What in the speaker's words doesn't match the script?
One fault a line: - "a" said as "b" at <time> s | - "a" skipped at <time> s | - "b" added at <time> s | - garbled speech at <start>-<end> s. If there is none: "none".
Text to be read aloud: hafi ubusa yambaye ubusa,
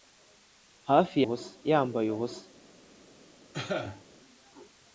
none